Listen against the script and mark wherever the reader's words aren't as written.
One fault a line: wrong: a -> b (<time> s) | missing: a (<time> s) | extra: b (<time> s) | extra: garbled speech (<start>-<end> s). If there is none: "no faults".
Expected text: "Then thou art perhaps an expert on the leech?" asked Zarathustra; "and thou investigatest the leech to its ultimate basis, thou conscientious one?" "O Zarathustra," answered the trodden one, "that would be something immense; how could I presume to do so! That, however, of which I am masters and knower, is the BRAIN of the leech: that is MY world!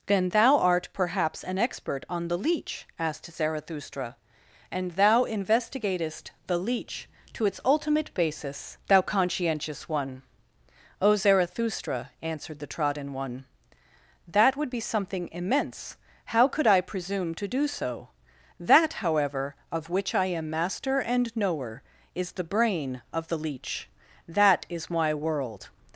wrong: masters -> master (20.5 s)